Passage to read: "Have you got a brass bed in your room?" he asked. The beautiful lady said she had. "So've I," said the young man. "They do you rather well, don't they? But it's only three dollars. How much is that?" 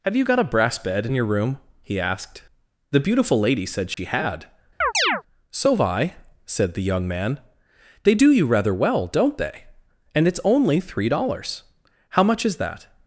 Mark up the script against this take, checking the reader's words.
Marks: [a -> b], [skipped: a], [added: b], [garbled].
"Have you got a brass bed in your room?" he asked. The beautiful lady said she had. "So've I," said the young man. "They do you rather well, don't they? [But -> And] it's only three dollars. How much is that?"